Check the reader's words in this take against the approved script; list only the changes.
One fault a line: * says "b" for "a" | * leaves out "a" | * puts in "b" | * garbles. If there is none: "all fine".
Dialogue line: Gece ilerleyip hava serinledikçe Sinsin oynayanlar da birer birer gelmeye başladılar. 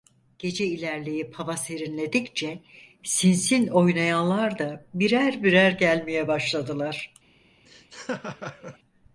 all fine